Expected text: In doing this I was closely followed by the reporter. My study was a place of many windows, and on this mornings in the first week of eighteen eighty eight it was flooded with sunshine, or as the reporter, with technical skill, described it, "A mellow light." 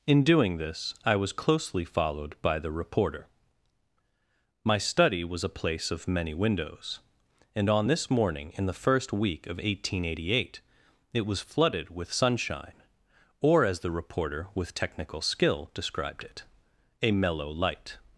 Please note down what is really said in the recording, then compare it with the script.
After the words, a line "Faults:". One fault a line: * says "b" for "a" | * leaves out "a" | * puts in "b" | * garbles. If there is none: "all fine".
In doing this I was closely followed by the reporter. My study was a place of many windows, and on this morning in the first week of eighteen eighty eight it was flooded with sunshine, or as the reporter, with technical skill, described it, "A mellow light."
Faults:
* says "morning" for "mornings"